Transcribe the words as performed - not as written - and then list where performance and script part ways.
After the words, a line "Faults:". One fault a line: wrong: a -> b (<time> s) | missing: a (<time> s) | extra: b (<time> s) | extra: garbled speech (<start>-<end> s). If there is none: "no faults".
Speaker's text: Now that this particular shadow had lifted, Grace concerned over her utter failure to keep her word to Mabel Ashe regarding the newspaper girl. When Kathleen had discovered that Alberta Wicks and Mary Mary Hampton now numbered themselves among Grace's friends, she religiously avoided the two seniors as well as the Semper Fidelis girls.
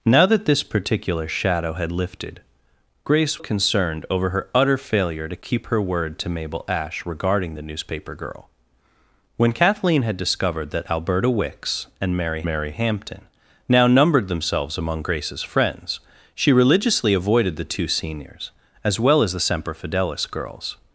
Now that this particular shadow had lifted, Grace concerned over her utter failure to keep her word to Mabel Ashe regarding the newspaper girl. When Kathleen had discovered that Alberta Wicks and Mary Mary Hampton now numbered themselves among Grace's friends, she religiously avoided the two seniors as well as the Semper Fidelis girls.
Faults:
no faults